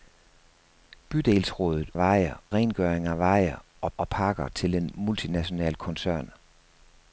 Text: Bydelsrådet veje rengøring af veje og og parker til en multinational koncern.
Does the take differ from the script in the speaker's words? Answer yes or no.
no